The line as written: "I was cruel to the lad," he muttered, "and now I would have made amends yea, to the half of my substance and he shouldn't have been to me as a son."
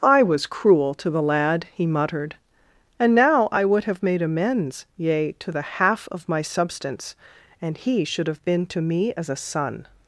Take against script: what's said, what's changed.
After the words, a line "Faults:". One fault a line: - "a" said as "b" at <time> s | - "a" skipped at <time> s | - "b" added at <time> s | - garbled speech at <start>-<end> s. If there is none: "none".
"I was cruel to the lad," he muttered, "and now I would have made amends yea, to the half of my substance and he should have been to me as a son."
Faults:
- "shouldn't" said as "should" at 8.0 s